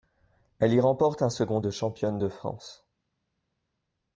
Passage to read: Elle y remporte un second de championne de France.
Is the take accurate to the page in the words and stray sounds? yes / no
yes